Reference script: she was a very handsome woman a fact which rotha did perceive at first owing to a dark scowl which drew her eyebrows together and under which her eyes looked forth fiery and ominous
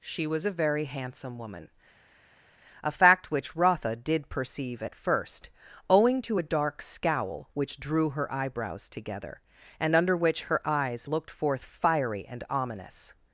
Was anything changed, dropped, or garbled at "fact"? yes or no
no